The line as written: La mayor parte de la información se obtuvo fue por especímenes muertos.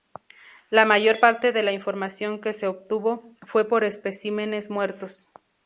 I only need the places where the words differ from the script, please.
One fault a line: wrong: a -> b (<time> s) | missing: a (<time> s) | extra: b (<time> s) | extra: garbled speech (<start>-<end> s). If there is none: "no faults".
extra: que (2.4 s)